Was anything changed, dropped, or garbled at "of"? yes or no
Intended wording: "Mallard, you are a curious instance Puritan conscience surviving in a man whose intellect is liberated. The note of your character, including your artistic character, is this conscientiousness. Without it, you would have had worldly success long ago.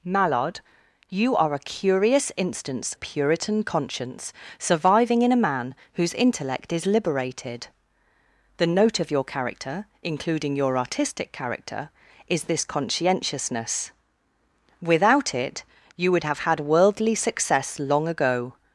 no